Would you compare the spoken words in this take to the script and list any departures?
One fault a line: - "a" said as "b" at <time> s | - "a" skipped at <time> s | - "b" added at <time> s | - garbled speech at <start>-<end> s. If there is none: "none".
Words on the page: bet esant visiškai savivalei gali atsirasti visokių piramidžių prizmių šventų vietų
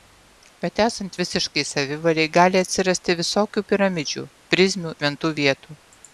none